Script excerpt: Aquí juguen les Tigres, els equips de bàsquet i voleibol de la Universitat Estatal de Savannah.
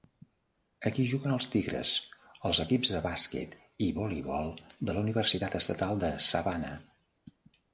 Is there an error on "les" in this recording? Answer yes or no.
yes